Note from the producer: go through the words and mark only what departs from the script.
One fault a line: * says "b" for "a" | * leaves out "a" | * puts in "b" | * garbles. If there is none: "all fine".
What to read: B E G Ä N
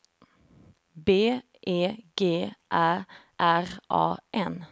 * puts in "R A"